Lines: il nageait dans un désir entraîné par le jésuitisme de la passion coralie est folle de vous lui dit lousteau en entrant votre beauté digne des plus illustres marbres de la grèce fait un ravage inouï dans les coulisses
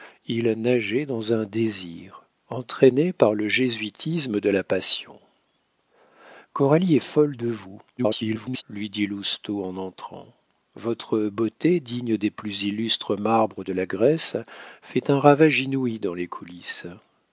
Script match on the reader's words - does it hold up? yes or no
no